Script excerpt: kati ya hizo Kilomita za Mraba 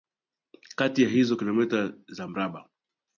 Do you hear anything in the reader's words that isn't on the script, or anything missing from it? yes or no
no